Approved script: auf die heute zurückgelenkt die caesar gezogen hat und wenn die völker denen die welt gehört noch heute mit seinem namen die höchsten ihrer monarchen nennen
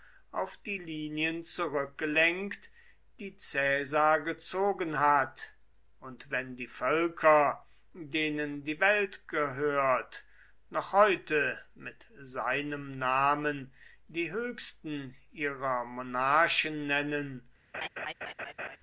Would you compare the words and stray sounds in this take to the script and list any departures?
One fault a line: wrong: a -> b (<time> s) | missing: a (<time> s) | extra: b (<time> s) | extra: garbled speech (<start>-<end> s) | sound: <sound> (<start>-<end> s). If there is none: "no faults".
wrong: heute -> linien (0.8 s)
sound: laugh (17.7-18.8 s)